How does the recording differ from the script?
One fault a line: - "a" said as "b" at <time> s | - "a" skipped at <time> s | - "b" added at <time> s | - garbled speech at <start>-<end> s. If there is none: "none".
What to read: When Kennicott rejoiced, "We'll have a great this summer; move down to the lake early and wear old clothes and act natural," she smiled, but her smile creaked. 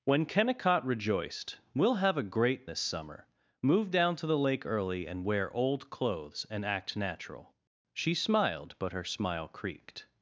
none